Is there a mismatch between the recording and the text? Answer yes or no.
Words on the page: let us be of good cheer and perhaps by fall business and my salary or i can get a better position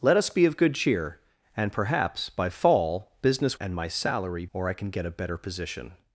no